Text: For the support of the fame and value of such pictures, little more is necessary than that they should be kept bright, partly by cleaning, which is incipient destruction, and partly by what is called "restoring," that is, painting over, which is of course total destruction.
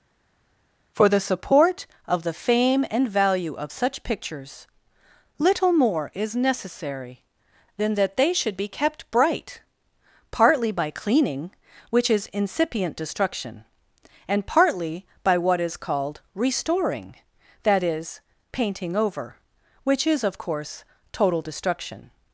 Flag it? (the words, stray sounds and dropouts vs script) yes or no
no